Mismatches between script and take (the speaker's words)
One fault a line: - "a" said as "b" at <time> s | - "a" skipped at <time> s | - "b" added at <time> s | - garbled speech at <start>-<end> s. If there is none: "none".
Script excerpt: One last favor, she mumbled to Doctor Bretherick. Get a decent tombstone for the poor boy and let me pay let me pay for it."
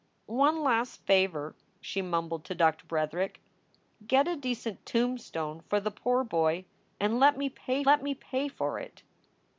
none